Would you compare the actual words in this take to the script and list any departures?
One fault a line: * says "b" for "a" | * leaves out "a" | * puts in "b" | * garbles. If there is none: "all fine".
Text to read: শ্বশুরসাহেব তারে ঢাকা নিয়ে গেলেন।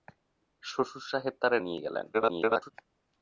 * leaves out "ঢাকা"
* garbles